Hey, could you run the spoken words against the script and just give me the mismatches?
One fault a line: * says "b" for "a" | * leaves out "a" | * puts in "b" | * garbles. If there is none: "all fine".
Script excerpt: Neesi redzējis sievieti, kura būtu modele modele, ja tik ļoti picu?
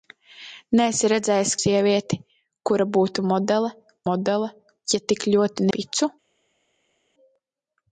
all fine